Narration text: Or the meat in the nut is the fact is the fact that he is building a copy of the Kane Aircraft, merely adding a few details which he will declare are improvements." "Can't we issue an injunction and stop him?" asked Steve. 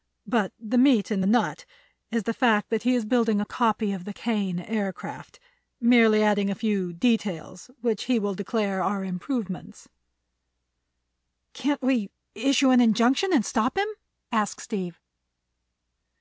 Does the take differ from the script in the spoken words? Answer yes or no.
yes